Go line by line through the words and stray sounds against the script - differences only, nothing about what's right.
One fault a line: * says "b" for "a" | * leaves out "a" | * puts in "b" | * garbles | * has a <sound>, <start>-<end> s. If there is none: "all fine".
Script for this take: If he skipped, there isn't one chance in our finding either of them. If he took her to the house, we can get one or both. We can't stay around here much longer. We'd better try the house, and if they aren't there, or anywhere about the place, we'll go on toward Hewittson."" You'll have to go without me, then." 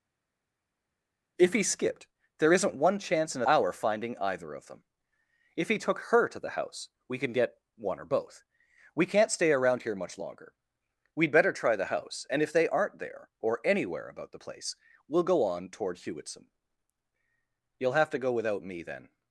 all fine